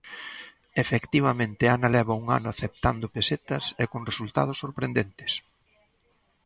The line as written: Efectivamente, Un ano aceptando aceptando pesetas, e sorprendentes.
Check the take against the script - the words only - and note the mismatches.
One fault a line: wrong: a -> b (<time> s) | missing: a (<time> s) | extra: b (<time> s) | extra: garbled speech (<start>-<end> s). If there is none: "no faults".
extra: Ana leva (1.8 s)
missing: aceptando (3.1 s)
extra: con resultados (3.9 s)